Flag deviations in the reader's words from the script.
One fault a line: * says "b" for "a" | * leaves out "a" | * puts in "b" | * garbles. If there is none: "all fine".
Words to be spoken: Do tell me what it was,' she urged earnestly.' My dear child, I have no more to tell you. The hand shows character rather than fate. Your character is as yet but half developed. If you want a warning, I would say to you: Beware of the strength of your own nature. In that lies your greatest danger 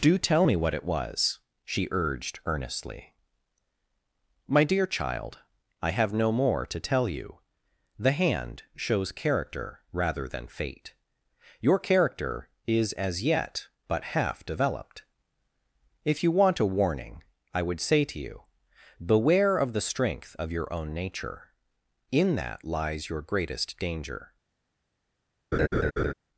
all fine